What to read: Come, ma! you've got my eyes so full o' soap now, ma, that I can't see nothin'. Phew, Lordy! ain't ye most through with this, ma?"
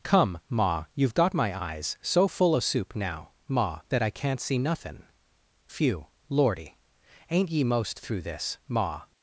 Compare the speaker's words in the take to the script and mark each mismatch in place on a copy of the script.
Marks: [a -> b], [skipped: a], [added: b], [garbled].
Come, ma! you've got my eyes so full o' [soap -> soup] now, ma, that I can't see nothin'. Phew, Lordy! ain't ye most through [skipped: with] this, ma?"